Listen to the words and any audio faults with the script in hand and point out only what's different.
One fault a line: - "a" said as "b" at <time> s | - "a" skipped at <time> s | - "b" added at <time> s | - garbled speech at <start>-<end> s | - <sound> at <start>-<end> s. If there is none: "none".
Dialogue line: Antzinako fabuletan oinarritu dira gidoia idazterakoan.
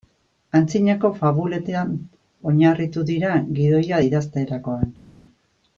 none